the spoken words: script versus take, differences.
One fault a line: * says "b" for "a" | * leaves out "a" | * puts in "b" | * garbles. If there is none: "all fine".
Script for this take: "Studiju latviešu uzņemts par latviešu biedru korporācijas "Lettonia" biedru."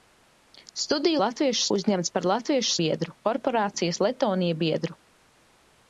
all fine